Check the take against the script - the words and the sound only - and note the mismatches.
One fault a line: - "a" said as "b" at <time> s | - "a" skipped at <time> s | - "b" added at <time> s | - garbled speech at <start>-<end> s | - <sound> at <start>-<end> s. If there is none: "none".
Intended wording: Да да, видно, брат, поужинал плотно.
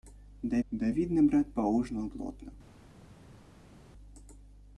none